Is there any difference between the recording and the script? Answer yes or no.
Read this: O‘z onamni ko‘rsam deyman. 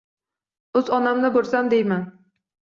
no